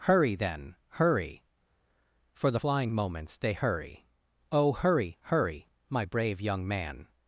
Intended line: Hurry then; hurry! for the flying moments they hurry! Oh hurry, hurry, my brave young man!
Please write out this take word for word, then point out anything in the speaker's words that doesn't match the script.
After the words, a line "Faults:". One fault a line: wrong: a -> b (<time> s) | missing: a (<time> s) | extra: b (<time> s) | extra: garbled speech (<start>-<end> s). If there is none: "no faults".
Hurry then; hurry! for the flying moments they hurry! Oh hurry, hurry, my brave young man!
Faults:
no faults